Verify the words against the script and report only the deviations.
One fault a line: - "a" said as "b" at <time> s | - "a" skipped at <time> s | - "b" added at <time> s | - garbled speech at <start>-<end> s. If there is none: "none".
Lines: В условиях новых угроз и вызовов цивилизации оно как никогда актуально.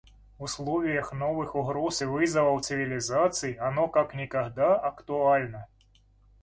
none